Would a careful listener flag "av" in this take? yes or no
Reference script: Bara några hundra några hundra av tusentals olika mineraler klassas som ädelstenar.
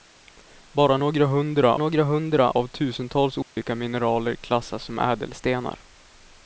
no